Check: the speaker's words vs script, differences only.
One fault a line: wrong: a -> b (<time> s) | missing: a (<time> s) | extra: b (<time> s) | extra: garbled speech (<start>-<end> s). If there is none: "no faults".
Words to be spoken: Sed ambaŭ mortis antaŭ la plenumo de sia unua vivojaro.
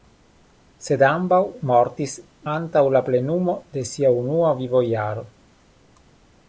no faults